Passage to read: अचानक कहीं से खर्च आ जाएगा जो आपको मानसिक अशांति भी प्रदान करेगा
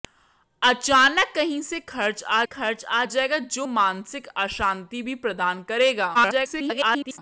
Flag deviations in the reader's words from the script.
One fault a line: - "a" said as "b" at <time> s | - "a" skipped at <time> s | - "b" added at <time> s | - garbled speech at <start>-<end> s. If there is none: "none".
- "खर्च आ" added at 2.4 s
- "आपको" skipped at 3.7 s
- garbled speech at 6.1-7.2 s